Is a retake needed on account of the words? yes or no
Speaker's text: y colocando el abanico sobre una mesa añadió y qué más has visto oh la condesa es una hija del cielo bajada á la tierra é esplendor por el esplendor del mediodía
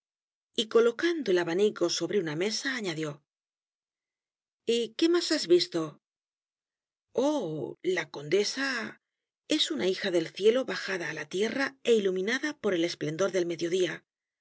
yes